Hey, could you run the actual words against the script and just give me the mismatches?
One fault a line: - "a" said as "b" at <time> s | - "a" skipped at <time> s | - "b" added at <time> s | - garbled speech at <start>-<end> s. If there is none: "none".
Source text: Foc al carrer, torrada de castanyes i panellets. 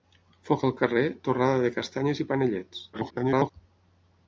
- garbled speech at 2.9-3.5 s